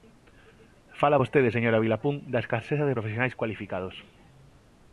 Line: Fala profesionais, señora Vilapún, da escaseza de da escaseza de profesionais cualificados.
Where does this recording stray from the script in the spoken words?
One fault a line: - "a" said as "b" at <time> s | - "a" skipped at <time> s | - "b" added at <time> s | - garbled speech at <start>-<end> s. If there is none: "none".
- "profesionais" said as "vostede" at 1.2 s
- "da escaseza de" skipped at 3.0 s